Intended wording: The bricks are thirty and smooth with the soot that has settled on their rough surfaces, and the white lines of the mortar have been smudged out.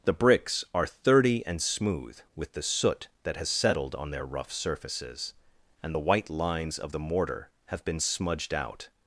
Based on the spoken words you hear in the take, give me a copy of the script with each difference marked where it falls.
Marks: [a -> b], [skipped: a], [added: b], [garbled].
The bricks are thirty and smooth with the soot that has settled on their rough surfaces, and the white lines of the mortar have been smudged out.